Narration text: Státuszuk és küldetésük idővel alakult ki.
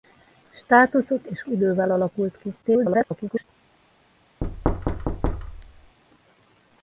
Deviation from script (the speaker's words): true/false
true